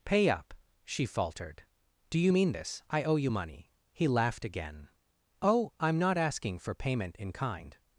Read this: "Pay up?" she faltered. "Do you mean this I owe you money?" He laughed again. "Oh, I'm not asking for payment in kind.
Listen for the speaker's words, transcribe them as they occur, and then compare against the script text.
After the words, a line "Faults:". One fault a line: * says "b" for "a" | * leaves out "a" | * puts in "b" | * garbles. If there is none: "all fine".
"Pay up?" she faltered. "Do you mean this I owe you money?" He laughed again. "Oh, I'm not asking for payment in kind.
Faults:
all fine